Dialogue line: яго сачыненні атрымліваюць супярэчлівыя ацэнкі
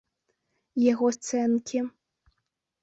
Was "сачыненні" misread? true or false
true